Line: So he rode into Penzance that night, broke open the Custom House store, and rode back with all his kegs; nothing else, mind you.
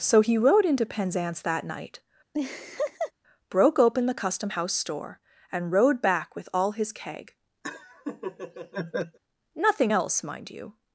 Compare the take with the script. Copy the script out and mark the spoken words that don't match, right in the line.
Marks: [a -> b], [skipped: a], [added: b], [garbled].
So he rode into Penzance that night, broke open the Custom House store, and rode back with all his [kegs; -> keg] nothing else, mind you.